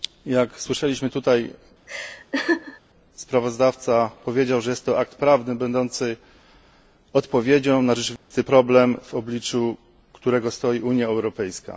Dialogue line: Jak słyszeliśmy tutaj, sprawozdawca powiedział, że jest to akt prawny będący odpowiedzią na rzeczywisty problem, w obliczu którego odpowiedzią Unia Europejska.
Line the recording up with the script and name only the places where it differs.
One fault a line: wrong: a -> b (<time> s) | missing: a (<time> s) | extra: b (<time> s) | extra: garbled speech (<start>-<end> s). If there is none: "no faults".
wrong: odpowiedzią -> stoi (10.5 s)